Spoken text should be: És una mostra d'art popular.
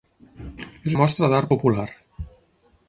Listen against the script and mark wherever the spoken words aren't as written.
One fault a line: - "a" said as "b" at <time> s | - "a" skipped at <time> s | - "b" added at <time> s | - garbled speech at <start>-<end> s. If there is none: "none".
- "una" skipped at 0.9 s